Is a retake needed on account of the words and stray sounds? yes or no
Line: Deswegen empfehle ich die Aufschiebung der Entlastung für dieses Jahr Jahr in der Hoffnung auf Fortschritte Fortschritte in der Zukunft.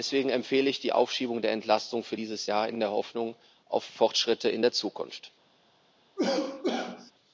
yes